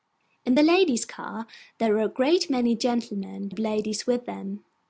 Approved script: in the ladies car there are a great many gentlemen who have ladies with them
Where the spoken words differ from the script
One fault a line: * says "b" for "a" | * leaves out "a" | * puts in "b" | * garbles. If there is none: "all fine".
* leaves out "who"